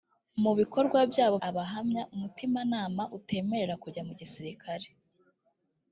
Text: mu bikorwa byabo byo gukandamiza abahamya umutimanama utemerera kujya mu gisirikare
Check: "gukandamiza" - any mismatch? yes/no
yes